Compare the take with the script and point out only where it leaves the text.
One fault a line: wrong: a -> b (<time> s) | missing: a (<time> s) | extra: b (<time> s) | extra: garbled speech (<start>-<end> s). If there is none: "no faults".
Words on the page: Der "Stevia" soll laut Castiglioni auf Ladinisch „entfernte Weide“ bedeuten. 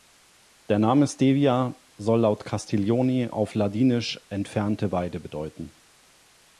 extra: Name (0.8 s)